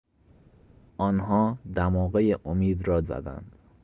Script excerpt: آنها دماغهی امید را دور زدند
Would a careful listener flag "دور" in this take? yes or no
yes